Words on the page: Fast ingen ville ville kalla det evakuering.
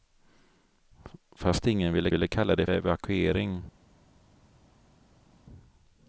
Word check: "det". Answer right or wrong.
right